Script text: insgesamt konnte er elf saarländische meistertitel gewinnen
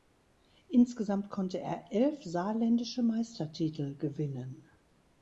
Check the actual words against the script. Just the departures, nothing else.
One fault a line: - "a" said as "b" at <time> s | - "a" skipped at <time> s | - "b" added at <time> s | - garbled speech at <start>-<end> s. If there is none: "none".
none